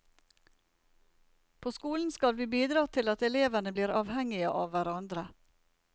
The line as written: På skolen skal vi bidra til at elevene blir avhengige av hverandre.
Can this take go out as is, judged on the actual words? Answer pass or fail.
pass